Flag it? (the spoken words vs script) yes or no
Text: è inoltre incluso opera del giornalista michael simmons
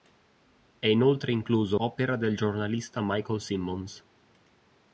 no